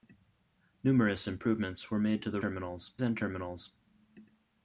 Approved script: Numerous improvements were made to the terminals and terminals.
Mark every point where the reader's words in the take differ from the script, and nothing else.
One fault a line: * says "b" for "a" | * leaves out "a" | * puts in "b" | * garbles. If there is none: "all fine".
all fine